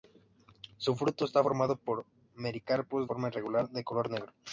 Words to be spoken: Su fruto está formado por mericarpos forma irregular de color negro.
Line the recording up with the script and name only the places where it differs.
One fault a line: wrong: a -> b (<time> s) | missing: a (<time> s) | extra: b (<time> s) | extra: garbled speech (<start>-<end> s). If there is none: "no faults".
no faults